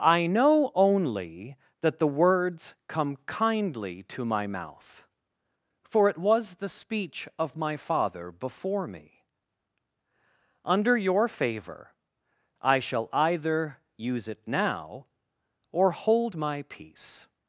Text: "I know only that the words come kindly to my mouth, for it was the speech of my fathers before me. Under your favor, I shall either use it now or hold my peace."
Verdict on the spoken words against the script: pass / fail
fail